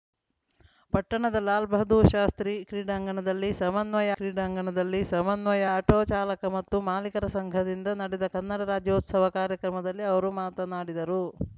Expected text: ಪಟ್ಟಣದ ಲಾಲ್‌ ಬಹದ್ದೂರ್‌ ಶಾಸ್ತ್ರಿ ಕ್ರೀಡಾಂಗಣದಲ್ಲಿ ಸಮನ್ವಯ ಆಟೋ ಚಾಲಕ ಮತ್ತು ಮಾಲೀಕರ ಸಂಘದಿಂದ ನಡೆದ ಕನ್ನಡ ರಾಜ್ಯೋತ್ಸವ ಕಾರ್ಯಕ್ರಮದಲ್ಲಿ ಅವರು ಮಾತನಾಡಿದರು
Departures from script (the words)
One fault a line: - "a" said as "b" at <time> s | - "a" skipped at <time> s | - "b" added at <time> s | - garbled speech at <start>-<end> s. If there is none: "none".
- "ಕ್ರೀಡಾಂಗಣದಲ್ಲಿ ಸಮನ್ವಯ" added at 4.2 s